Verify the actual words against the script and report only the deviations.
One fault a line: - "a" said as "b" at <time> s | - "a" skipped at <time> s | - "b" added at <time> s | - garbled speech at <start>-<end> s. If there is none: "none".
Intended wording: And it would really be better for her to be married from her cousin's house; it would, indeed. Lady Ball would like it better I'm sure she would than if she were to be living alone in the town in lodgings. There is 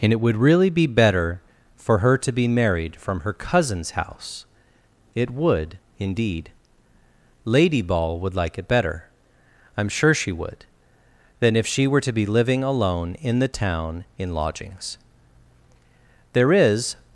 none